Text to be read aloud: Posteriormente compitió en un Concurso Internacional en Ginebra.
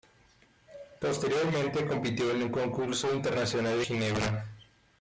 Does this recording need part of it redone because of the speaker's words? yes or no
yes